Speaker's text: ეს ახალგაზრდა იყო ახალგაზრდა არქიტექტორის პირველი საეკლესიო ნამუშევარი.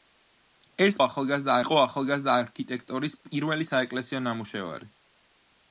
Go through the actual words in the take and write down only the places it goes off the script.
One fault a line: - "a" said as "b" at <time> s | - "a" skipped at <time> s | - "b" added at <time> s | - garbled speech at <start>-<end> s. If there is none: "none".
none